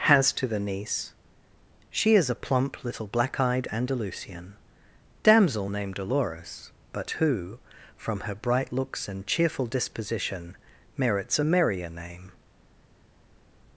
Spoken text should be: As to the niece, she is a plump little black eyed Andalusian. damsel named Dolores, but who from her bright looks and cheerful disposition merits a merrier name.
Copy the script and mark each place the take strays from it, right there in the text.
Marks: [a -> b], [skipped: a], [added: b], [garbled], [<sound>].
[As -> Has] to the niece, she is a plump little black eyed Andalusian. damsel named Dolores, but who from her bright looks and cheerful disposition merits a merrier name.